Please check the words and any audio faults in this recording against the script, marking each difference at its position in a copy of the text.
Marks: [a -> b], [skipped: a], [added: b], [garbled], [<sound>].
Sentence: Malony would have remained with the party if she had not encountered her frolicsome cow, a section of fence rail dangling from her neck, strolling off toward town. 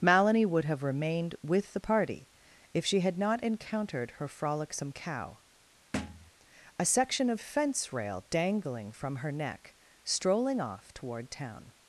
Malony would have remained with the party if she had not encountered her frolicsome cow, [thud] a section of fence rail dangling from her neck, strolling off toward town.